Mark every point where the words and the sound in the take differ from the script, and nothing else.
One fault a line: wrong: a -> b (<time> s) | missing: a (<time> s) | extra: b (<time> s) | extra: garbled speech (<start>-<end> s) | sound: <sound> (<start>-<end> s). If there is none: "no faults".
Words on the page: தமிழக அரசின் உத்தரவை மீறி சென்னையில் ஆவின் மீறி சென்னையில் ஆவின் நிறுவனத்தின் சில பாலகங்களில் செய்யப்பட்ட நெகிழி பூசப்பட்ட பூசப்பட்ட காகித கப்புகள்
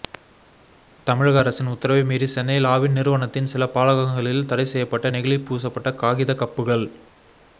missing: மீறி சென்னையில் ஆவின் (2.9 s)
extra: தடை (4.5 s)
missing: பூசப்பட்ட (5.9 s)